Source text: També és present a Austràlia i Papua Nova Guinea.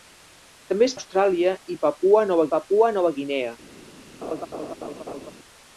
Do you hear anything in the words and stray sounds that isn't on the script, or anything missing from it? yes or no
yes